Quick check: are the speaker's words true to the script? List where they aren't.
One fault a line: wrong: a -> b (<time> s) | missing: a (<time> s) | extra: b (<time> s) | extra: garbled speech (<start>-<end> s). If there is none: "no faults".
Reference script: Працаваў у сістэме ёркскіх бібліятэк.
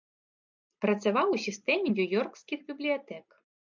extra: нью (1.9 s)